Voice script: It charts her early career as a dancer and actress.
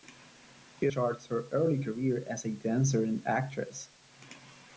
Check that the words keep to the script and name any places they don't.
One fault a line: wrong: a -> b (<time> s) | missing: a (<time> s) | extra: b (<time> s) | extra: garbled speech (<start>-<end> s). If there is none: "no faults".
no faults